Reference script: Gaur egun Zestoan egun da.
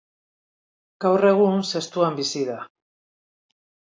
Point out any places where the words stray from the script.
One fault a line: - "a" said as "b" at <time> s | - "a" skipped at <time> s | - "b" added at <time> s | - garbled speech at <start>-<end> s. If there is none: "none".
- "egun" said as "bizi" at 2.2 s